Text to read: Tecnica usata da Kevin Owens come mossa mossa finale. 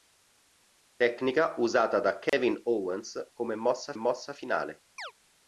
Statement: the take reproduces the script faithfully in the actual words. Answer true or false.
true